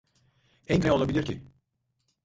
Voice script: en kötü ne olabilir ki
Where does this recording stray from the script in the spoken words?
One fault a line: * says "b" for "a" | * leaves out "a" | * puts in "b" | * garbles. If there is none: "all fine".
* leaves out "kötü"